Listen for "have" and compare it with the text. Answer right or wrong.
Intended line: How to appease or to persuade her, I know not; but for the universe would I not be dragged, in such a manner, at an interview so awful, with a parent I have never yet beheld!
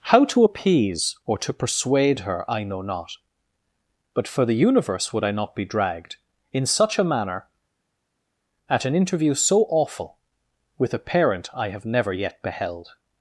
right